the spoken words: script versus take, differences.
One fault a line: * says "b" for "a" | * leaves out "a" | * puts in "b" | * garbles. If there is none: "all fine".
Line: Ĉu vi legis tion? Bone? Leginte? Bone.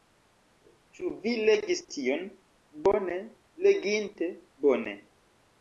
all fine